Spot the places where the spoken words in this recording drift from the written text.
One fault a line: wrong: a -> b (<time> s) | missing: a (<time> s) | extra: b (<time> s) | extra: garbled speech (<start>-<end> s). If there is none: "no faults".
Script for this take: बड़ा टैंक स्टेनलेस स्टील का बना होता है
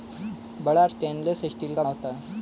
missing: टैंक (0.8 s)
missing: बना (1.8 s)